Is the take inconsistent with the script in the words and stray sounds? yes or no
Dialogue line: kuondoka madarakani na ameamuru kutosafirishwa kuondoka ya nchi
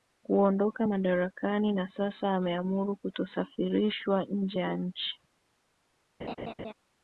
yes